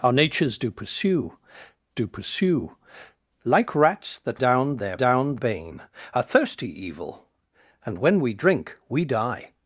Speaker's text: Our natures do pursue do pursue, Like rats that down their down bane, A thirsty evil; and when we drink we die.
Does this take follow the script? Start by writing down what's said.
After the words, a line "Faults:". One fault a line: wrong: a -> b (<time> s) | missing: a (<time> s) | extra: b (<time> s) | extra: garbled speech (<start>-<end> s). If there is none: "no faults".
Our natures do pursue do pursue, Like rats that down their down bane, A thirsty evil; and when we drink we die.
Faults:
no faults